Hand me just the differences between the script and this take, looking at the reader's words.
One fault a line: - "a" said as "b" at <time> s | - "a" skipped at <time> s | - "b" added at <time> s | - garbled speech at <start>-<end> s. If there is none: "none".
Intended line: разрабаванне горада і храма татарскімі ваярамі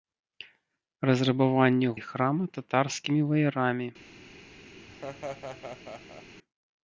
- "горада" skipped at 1.9 s